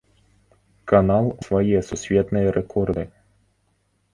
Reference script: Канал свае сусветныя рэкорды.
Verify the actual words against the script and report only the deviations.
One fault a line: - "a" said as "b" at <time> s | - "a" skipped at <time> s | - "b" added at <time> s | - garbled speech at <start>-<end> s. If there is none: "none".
none